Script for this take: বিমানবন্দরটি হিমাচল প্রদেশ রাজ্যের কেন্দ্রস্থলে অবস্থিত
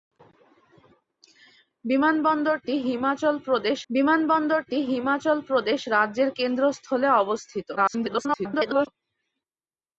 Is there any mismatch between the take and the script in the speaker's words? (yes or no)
yes